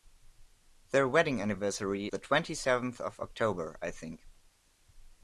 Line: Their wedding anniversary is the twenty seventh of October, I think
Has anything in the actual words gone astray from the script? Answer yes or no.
yes